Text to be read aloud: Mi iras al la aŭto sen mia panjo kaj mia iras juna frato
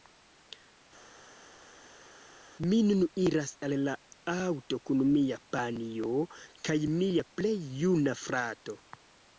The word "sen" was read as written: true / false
false